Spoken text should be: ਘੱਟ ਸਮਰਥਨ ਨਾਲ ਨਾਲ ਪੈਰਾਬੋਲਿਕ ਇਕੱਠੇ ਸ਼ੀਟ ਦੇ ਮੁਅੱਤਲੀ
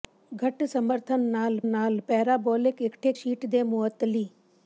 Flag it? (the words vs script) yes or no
no